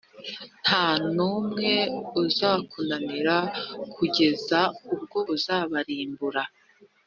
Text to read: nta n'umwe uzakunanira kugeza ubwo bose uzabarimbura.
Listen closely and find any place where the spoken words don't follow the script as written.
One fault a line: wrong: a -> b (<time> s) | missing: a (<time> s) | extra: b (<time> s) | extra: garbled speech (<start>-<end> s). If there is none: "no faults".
missing: bose (5.2 s)